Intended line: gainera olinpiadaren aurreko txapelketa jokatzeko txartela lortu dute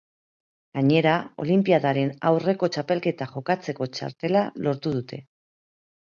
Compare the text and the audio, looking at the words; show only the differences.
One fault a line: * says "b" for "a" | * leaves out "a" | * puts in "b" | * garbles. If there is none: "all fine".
all fine